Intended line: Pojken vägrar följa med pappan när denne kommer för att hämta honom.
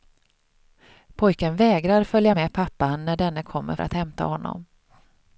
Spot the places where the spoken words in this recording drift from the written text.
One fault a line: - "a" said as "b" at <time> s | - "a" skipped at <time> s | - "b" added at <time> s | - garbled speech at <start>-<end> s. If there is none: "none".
- "för" skipped at 3.8 s